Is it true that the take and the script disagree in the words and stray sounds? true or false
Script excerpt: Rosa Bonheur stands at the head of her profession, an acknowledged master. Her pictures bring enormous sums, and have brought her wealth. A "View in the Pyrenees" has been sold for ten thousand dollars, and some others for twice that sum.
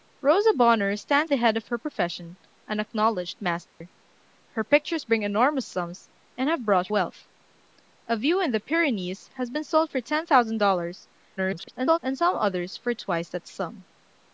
true